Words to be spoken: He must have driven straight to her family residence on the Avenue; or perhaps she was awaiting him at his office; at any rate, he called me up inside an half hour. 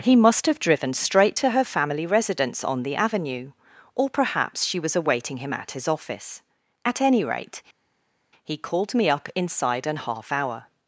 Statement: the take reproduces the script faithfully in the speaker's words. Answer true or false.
true